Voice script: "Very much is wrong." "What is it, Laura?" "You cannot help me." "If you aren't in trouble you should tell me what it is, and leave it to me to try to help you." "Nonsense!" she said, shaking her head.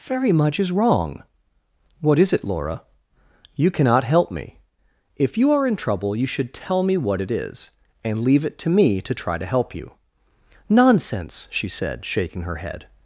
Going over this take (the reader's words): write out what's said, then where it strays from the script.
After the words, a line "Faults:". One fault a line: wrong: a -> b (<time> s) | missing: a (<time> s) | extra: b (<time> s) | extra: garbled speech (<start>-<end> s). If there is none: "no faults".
"Very much is wrong." "What is it, Laura?" "You cannot help me." "If you are in trouble you should tell me what it is, and leave it to me to try to help you." "Nonsense!" she said, shaking her head.
Faults:
wrong: aren't -> are (5.5 s)